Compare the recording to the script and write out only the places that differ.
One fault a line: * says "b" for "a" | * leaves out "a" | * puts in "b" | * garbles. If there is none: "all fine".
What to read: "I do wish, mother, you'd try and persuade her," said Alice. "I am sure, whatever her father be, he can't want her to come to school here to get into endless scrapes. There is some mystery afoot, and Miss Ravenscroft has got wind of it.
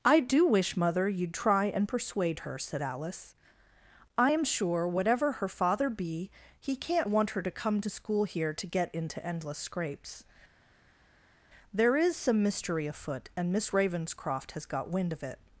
all fine